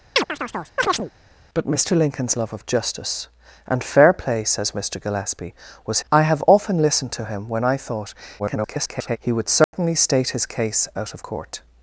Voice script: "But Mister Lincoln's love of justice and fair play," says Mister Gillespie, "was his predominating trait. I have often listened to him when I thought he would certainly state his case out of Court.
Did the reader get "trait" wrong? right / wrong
wrong